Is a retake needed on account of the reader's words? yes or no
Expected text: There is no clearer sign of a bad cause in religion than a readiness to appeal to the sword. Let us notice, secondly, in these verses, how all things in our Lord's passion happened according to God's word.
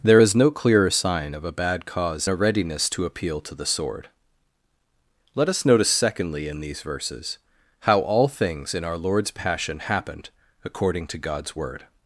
yes